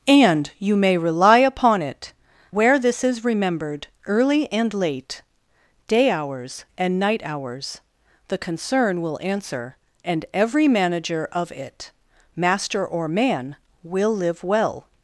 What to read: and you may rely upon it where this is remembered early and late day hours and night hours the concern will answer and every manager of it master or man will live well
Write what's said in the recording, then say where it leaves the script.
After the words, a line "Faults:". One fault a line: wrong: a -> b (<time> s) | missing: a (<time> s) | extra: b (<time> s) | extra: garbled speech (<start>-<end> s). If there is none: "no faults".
and you may rely upon it where this is remembered early and late day hours and night hours the concern will answer and every manager of it master or man will live well
Faults:
no faults